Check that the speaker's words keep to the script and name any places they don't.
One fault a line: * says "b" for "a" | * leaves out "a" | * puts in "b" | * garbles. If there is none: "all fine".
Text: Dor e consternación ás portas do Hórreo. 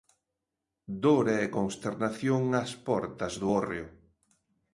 all fine